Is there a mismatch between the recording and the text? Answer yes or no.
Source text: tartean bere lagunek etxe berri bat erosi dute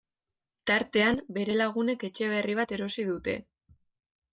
no